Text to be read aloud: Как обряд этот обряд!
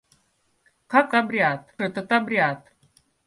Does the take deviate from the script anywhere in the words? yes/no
no